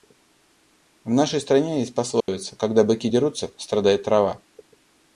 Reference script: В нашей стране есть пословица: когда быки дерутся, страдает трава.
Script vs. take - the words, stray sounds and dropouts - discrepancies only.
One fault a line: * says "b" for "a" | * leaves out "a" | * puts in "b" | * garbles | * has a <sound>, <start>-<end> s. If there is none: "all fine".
* has a dropout, 2.2-2.3 s